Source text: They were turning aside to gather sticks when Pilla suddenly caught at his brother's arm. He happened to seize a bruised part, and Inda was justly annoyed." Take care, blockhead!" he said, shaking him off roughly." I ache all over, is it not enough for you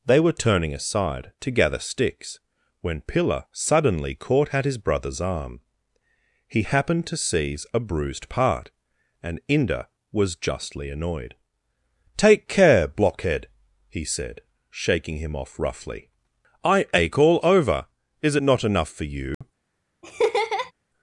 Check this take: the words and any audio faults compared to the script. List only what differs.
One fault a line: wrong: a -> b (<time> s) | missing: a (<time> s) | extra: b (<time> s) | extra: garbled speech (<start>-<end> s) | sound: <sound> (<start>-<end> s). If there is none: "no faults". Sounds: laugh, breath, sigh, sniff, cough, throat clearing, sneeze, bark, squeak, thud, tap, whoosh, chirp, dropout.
sound: dropout (19.3-19.4 s)
sound: laugh (20.0-20.7 s)